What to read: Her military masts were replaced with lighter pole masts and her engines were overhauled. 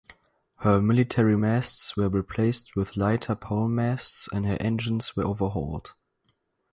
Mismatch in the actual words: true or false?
false